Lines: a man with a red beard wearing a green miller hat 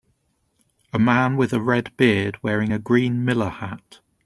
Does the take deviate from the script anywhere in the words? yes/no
no